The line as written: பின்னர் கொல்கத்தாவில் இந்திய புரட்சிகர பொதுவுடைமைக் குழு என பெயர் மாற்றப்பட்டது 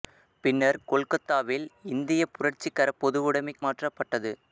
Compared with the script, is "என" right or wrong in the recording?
wrong